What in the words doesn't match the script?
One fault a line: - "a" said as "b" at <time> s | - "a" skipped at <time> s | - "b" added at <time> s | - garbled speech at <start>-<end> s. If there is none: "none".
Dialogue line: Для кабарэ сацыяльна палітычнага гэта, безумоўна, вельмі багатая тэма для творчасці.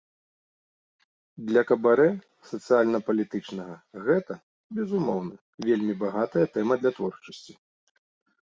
none